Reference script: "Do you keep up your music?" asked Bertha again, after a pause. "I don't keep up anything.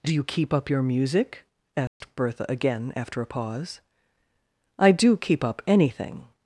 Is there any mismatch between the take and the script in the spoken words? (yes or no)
yes